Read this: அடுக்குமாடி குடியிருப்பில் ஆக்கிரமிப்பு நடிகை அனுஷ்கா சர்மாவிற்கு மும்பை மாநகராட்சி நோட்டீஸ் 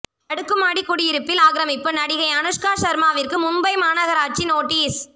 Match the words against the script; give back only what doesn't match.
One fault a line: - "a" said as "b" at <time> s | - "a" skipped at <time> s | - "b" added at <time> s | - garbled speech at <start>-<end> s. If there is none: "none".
none